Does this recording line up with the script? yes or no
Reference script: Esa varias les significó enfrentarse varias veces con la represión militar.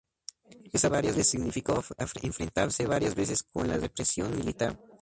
yes